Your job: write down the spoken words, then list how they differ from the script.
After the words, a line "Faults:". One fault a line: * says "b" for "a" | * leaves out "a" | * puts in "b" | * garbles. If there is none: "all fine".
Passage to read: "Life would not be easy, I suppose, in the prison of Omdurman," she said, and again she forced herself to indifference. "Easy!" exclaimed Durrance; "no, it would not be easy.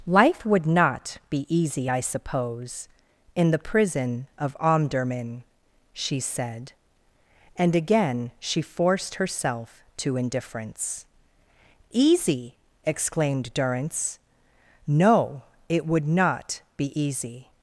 "Life would not be easy, I suppose, in the prison of Omdurman," she said, and again she forced herself to indifference. "Easy!" exclaimed Durrance; "no, it would not be easy.
Faults:
all fine